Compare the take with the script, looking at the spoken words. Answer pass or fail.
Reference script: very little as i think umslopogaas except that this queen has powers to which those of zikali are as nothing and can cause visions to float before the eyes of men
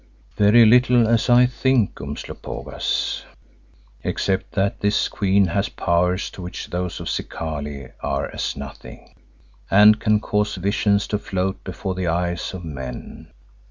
pass